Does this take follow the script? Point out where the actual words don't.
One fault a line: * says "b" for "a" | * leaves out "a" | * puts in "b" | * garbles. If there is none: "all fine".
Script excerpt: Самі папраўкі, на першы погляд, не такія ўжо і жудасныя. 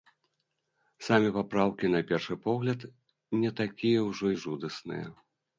all fine